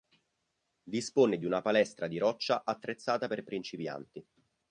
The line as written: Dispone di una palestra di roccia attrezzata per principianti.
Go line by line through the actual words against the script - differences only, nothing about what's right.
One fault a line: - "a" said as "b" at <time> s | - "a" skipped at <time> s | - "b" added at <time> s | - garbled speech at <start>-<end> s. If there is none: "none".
none